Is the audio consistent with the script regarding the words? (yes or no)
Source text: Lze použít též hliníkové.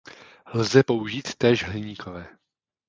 yes